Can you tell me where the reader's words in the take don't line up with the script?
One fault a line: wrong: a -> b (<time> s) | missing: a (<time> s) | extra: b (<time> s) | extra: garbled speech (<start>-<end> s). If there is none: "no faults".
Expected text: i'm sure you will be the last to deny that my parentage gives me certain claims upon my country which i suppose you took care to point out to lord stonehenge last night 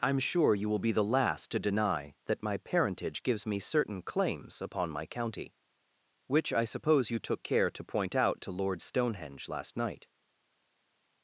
wrong: country -> county (5.0 s)